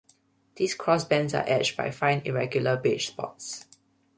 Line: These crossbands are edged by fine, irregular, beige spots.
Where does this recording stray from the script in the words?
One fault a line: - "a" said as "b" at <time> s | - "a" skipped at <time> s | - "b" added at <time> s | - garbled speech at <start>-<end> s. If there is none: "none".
none